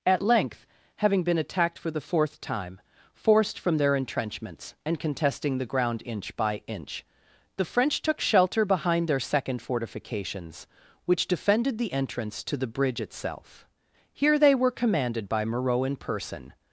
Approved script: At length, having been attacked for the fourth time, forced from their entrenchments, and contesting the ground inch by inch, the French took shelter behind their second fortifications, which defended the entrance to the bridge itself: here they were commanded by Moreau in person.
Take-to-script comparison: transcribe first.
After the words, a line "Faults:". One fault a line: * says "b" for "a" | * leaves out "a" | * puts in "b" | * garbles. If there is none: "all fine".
At length, having been attacked for the fourth time, forced from their entrenchments, and contesting the ground inch by inch, the French took shelter behind their second fortifications, which defended the entrance to the bridge itself: here they were commanded by Moreau in person.
Faults:
all fine